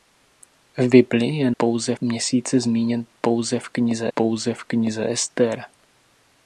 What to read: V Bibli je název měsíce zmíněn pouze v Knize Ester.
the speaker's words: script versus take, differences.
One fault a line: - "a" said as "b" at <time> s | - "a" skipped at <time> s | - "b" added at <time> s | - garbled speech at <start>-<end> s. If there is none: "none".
- "název" said as "pouze" at 1.6 s
- "pouze v Knize" added at 4.1 s